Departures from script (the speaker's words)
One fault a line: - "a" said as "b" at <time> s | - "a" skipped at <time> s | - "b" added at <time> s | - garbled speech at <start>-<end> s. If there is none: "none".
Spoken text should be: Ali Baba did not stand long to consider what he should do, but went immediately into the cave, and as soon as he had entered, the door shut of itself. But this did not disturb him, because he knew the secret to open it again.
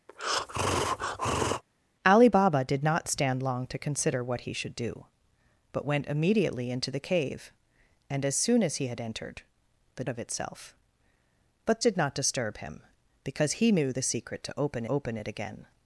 - "door shut" skipped at 10.0 s
- "this" skipped at 11.8 s
- "open" added at 14.9 s